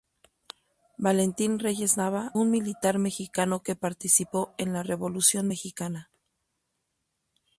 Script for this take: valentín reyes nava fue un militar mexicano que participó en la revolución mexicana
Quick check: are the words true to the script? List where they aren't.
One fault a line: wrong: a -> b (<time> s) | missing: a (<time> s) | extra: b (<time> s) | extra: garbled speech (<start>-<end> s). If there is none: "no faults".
missing: fue (2.3 s)